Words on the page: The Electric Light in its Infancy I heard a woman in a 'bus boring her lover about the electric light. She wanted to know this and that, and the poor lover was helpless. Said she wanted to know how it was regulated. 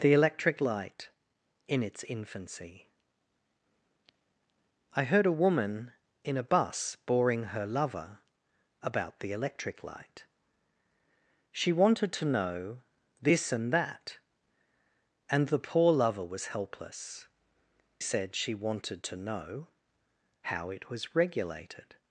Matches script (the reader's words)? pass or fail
pass